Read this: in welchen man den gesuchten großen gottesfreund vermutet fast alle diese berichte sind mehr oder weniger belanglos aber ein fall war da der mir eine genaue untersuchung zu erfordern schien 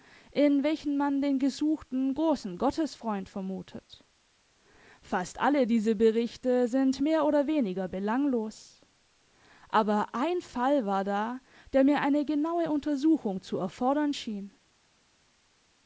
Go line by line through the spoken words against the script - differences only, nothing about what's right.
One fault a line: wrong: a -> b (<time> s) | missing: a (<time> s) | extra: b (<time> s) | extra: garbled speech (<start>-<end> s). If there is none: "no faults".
no faults